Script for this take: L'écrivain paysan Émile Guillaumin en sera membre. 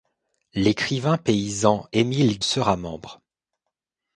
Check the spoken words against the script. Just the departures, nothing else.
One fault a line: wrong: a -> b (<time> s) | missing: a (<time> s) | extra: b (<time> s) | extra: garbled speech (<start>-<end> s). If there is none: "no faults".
missing: Guillaumin en (2.4 s)